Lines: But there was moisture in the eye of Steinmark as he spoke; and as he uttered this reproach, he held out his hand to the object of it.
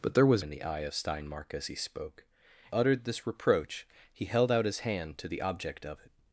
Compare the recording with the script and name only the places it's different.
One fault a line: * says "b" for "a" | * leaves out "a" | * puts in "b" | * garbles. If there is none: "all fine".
* leaves out "moisture"
* leaves out "and as he"